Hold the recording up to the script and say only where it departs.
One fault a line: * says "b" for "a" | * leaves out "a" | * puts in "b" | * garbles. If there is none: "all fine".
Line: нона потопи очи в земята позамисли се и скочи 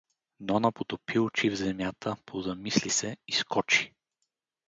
all fine